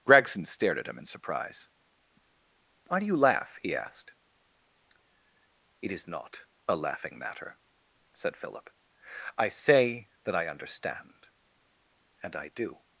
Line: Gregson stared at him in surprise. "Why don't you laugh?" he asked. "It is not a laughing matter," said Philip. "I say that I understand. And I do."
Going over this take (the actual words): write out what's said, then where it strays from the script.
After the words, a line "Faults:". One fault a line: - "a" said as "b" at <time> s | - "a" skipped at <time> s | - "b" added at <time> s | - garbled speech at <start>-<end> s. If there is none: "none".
Gregson stared at him in surprise. "Why do you laugh?" he asked. "It is not a laughing matter," said Philip. "I say that I understand. And I do."
Faults:
- "don't" said as "do" at 3.0 s